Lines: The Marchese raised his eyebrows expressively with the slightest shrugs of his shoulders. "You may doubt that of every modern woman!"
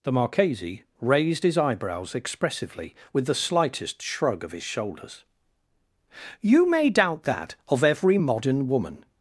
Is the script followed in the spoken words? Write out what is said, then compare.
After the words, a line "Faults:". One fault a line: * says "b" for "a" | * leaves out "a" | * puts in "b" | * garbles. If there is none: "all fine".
The Marchese raised his eyebrows expressively with the slightest shrug of his shoulders. "You may doubt that of every modern woman!"
Faults:
* says "shrug" for "shrugs"